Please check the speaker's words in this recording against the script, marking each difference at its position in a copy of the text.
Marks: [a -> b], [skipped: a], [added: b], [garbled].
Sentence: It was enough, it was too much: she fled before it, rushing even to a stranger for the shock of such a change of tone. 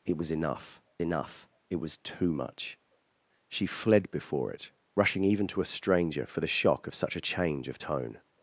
It was enough, [added: enough] it was too much: she fled before it, rushing even to a stranger for the shock of such a change of tone.